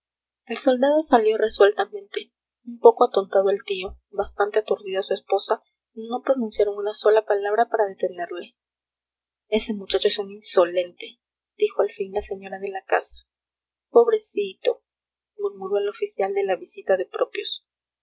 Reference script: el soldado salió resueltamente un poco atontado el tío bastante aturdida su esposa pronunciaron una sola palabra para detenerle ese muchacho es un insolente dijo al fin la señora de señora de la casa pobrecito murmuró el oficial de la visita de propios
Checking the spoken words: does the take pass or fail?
fail